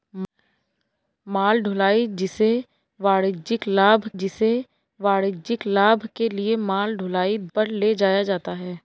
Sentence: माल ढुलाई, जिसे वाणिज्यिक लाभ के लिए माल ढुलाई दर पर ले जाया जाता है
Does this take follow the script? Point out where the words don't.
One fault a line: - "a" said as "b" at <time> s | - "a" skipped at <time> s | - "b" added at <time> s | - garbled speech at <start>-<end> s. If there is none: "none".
- "जिसे वाणिज्यिक लाभ" added at 4.2 s
- "दर" skipped at 7.4 s